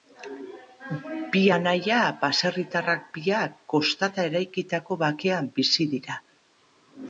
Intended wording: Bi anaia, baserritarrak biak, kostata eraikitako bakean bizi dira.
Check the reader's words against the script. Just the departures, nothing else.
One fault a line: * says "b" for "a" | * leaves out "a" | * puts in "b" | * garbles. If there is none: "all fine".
all fine